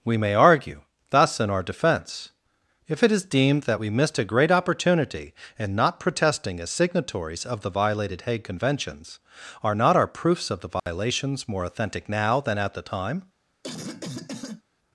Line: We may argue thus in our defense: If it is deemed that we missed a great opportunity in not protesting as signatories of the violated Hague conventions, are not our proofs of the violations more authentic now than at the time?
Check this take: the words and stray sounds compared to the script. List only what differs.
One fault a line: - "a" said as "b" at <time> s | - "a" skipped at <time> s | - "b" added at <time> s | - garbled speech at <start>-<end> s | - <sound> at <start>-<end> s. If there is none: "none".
- dropout at 10.8-10.9 s
- cough at 13.6-14.6 s